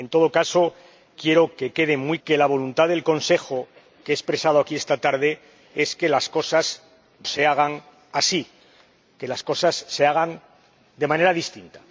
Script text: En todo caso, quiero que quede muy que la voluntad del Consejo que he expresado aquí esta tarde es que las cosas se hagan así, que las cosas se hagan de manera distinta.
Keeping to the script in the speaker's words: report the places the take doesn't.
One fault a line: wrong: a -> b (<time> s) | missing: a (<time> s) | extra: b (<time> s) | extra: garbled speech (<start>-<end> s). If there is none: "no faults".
no faults